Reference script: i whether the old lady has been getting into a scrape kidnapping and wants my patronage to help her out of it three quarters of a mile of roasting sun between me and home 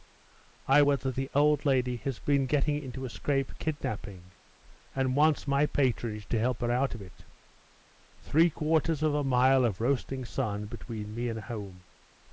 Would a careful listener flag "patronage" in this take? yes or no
no